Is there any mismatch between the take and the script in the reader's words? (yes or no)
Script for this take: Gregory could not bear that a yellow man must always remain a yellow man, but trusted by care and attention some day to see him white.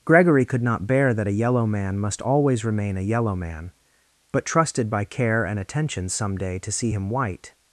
no